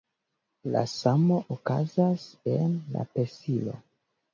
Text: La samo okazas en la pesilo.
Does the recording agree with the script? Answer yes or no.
yes